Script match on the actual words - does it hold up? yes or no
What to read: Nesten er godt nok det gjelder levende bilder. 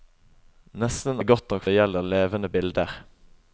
yes